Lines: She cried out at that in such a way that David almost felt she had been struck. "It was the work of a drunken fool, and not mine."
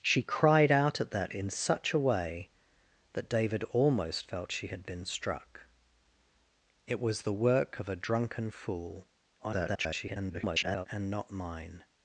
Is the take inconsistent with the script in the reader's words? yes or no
yes